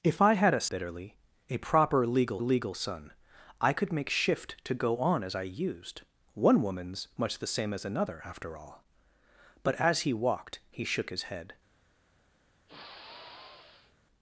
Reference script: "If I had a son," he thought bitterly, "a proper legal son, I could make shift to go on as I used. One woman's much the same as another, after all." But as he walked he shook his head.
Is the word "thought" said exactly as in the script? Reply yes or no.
no